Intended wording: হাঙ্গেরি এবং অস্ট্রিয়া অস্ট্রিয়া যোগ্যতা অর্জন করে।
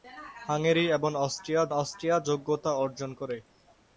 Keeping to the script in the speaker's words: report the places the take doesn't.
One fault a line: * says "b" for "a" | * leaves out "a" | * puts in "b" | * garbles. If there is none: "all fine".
all fine